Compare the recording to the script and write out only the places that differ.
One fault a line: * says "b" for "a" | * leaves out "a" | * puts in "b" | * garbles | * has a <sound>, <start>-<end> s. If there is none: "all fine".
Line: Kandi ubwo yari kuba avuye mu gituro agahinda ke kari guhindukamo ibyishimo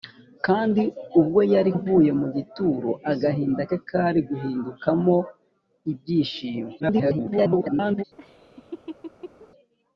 * leaves out "kuba"
* garbles
* has a laugh, 8.2-9.5 s